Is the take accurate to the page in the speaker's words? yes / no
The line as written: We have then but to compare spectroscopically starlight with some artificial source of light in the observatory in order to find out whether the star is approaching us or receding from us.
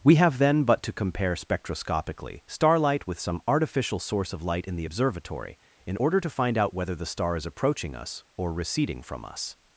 yes